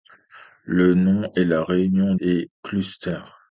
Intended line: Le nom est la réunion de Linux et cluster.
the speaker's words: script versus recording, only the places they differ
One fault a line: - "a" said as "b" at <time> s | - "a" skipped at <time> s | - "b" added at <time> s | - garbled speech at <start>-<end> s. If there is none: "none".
- "de Linux" skipped at 2.1 s